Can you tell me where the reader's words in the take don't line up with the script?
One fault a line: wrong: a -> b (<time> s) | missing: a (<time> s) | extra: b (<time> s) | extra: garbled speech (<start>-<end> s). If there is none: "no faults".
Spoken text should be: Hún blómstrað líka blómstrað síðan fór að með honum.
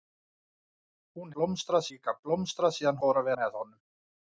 no faults